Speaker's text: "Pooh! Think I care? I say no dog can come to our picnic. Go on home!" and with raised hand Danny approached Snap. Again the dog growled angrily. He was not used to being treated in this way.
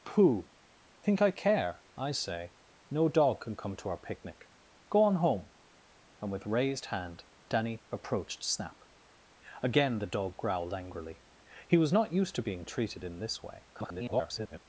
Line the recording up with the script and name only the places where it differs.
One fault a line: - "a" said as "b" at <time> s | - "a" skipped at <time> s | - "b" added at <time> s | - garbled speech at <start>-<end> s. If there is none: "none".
- garbled speech at 13.7-14.6 s